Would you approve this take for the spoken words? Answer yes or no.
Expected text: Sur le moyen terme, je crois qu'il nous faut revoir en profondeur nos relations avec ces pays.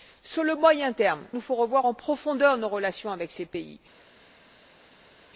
no